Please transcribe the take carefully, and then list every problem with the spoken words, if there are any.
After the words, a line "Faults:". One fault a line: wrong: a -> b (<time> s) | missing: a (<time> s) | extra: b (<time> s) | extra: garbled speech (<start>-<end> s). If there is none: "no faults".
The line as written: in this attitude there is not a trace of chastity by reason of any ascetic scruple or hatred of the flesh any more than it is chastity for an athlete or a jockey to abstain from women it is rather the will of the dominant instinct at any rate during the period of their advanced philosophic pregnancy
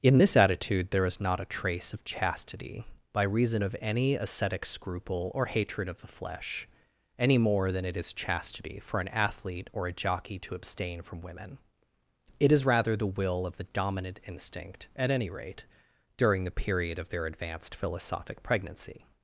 in this attitude there is not a trace of chastity by reason of any ascetic scruple or hatred of the flesh any more than it is chastity for an athlete or a jockey to abstain from women it is rather the will of the dominant instinct at any rate during the period of their advanced philosophic pregnancy
Faults:
no faults